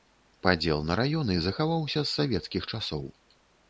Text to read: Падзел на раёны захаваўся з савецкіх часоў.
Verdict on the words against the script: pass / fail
pass